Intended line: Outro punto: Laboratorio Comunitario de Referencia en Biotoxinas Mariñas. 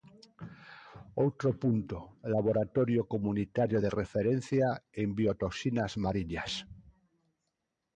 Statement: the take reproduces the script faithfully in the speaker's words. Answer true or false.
true